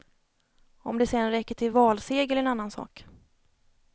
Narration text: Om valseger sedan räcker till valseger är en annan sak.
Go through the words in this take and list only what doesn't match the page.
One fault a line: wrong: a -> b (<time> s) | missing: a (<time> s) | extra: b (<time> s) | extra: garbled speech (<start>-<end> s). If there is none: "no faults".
wrong: valseger -> det (1.0 s)